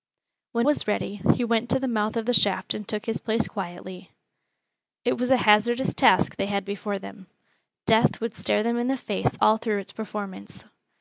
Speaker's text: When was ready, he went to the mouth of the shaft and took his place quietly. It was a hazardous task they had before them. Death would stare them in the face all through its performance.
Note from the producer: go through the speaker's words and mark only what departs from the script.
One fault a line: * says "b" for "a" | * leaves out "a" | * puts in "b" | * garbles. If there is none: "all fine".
all fine